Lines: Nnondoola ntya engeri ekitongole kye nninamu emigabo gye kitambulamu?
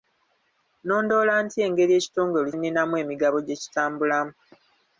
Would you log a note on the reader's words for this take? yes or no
yes